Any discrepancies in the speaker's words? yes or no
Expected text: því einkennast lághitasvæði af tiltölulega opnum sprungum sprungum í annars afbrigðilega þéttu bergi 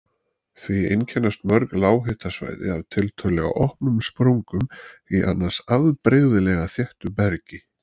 yes